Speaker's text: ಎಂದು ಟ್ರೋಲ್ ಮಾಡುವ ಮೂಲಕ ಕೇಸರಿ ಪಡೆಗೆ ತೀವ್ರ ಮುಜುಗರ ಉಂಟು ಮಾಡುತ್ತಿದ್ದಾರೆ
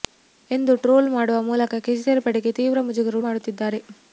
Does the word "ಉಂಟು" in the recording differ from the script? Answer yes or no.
yes